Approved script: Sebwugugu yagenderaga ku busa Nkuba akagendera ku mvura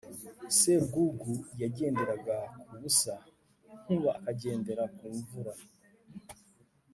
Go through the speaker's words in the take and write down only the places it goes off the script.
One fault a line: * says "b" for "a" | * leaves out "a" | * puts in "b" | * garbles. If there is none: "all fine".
all fine